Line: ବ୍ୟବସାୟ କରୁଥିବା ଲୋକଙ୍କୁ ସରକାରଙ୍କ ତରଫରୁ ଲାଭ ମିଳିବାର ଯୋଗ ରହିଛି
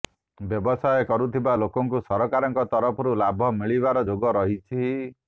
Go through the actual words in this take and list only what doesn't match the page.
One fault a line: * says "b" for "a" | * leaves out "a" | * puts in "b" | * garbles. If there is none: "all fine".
all fine